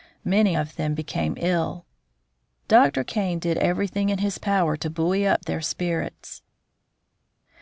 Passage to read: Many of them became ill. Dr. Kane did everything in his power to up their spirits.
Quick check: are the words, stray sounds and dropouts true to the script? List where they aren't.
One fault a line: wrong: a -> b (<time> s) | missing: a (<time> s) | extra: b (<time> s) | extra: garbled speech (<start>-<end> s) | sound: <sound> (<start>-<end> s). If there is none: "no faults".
extra: buoy (4.9 s)